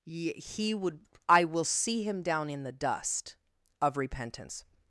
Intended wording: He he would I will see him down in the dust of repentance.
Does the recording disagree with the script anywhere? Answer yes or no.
yes